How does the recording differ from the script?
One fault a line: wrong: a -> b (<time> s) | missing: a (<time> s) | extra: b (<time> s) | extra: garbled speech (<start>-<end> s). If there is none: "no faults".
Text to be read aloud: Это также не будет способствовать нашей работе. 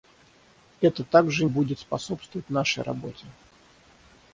missing: не (1.4 s)